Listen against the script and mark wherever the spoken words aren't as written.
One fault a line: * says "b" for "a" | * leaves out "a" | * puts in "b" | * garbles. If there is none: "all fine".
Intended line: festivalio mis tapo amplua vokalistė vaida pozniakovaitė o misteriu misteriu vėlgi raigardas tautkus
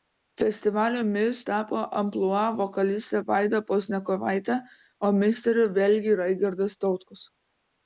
* leaves out "misteriu"